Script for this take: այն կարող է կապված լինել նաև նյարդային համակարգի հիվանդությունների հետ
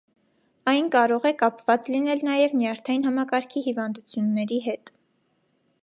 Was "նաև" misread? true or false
false